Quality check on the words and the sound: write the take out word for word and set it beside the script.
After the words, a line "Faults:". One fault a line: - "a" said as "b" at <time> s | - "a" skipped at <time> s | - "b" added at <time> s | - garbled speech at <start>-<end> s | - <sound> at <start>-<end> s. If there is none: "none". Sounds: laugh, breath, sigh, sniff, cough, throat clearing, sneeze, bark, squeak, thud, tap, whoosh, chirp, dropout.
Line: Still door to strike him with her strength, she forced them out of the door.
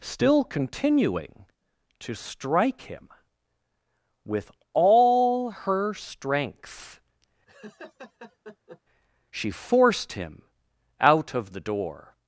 Still continuing to strike him with all her strength, she forced him out of the door.
Faults:
- "door" said as "continuing" at 0.4 s
- "all" added at 4.7 s
- laugh at 7.5-8.8 s
- "them" said as "him" at 10.1 s